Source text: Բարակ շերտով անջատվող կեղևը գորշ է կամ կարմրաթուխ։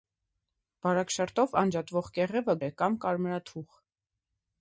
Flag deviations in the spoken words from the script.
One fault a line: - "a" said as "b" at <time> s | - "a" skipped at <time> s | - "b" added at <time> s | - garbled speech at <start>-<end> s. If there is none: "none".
- "գորշ" skipped at 2.6 s